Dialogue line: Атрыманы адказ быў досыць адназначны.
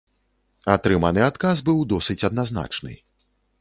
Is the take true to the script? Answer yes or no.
yes